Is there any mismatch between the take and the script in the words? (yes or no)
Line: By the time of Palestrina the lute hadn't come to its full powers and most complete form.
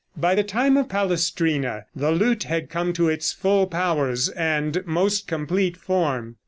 yes